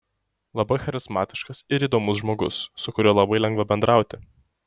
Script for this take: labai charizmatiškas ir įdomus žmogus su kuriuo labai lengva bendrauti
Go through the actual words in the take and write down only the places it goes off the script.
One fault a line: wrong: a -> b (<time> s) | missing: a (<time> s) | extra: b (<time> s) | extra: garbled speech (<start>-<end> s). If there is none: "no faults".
no faults